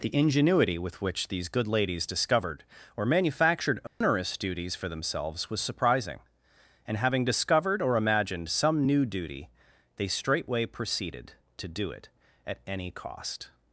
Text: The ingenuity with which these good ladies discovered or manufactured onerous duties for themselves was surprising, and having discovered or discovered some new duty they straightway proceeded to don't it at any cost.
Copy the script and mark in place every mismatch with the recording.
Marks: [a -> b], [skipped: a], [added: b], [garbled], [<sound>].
The ingenuity with which these good ladies discovered or manufactured onerous [dropout] duties for themselves was surprising, and having discovered or [discovered -> imagined] some new duty they straightway proceeded to [don't -> do] it at any cost.